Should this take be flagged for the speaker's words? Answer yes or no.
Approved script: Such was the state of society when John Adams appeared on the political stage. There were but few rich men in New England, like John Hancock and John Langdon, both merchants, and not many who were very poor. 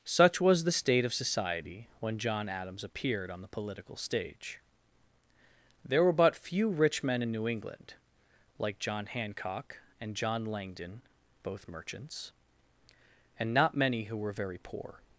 no